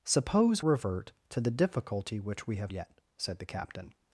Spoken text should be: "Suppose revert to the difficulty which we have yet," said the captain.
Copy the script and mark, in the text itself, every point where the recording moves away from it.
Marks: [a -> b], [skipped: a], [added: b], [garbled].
"Suppose revert to the difficulty which we have yet," said the captain.